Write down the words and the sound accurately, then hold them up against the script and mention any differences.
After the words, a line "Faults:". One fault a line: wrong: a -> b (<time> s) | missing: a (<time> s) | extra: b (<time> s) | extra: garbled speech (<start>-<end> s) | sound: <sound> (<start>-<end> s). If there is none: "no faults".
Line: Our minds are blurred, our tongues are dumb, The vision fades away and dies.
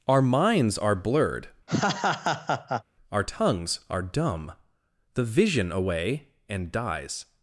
Our minds are blurred, our tongues are dumb, The vision away and dies.
Faults:
sound: laugh (1.7-2.8 s)
missing: fades (5.7 s)